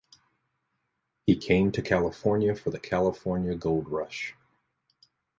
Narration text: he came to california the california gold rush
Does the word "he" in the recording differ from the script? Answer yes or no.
no